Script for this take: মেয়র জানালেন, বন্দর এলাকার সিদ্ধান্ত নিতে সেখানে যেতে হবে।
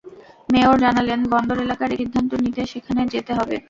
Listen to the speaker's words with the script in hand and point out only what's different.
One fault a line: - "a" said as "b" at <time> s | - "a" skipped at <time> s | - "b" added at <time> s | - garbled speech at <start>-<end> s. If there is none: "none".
none